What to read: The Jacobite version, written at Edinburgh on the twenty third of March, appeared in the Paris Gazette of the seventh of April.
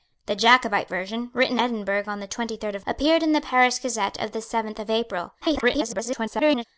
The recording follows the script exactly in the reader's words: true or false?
false